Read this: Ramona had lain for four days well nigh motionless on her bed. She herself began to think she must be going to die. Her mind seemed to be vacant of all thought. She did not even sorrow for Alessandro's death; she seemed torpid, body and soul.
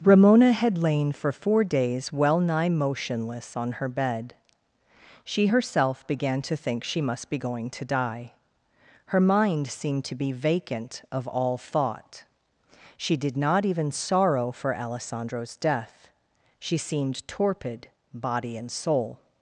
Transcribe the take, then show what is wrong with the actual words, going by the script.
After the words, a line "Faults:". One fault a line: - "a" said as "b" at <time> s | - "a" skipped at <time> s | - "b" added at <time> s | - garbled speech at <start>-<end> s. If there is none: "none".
Ramona had lain for four days well nigh motionless on her bed. She herself began to think she must be going to die. Her mind seemed to be vacant of all thought. She did not even sorrow for Alessandro's death; she seemed torpid, body and soul.
Faults:
none